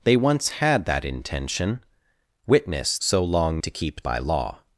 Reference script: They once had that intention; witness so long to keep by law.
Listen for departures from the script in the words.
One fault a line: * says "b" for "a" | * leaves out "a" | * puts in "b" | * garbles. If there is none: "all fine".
all fine